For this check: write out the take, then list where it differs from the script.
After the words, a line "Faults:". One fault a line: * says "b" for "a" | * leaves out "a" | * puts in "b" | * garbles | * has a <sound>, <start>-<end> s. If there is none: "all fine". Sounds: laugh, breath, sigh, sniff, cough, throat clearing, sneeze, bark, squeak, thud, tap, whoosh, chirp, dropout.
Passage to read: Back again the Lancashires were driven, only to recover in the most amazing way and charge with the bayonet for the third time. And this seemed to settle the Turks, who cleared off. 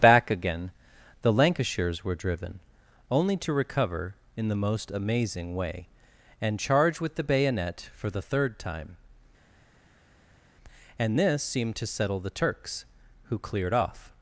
Back again the Lancashires were driven, only to recover in the most amazing way and charge with the bayonet for the third time. And this seemed to settle the Turks, who cleared off.
Faults:
all fine